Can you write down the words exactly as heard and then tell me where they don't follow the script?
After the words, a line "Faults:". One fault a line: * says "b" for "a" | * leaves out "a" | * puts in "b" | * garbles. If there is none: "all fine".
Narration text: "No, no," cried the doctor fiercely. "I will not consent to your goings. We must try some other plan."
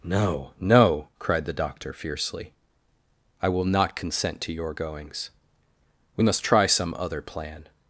"No, no," cried the doctor fiercely. "I will not consent to your goings. We must try some other plan."
Faults:
all fine